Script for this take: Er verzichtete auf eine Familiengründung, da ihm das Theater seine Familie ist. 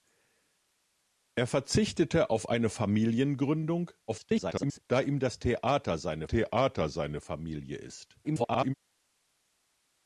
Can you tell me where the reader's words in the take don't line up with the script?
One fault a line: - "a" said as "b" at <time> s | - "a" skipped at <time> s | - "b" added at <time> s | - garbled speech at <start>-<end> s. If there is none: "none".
- garbled speech at 4.1-4.8 s
- "Theater seine" added at 6.2 s
- garbled speech at 8.2-8.7 s